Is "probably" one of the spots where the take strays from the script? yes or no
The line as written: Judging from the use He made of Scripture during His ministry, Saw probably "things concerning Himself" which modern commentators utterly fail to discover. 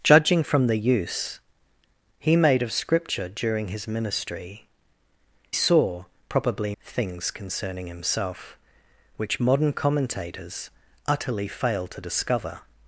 no